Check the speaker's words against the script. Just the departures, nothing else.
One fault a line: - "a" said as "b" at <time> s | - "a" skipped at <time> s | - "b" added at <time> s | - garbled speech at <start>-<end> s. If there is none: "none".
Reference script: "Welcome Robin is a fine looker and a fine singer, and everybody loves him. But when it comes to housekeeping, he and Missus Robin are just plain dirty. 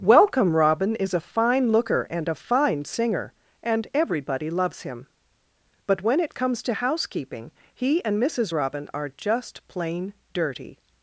none